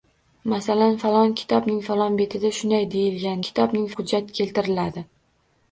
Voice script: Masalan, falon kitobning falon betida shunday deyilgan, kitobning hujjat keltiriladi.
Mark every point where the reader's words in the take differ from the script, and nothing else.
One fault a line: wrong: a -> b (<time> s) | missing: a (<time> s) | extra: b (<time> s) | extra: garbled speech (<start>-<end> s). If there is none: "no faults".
no faults